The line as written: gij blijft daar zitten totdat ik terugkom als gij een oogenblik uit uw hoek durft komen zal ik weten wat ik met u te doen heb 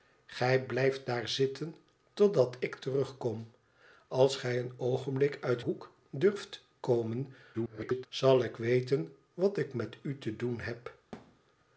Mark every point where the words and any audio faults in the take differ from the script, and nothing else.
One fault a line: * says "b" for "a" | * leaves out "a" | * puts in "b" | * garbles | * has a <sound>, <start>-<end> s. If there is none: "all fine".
* leaves out "uw"
* garbles
* has a thud, 11.1-11.4 s